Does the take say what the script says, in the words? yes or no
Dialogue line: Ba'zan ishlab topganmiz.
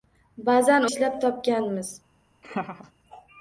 yes